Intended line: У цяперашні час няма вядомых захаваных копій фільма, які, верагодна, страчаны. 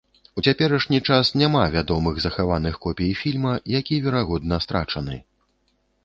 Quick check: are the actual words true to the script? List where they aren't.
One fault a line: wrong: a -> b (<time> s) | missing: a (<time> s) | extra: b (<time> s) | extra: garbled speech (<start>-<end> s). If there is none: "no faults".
no faults